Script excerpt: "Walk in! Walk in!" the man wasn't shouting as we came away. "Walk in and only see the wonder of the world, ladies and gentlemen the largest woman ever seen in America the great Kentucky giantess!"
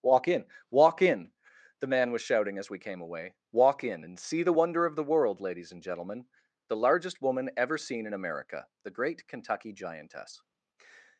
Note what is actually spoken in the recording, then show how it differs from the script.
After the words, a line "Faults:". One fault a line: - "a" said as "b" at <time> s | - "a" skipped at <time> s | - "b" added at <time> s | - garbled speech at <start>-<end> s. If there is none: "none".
"Walk in! Walk in!" the man was shouting as we came away. "Walk in and see the wonder of the world, ladies and gentlemen the largest woman ever seen in America the great Kentucky giantess!"
Faults:
- "wasn't" said as "was" at 2.1 s
- "only" skipped at 4.2 s